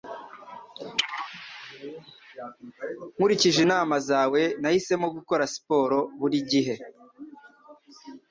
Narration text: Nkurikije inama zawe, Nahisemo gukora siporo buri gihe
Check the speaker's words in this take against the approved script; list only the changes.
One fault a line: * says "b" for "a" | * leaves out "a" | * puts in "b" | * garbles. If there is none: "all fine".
all fine